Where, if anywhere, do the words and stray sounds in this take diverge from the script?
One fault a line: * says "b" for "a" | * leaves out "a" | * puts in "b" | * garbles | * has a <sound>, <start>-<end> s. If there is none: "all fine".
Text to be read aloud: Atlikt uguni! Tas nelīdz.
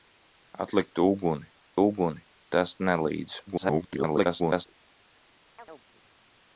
* puts in "uguni"
* garbles
* has a chirp, 5.6-5.9 s